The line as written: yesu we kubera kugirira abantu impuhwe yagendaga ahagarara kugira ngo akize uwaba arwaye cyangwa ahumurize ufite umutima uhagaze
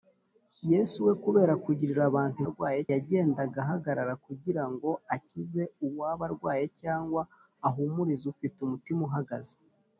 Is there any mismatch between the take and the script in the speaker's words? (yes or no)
yes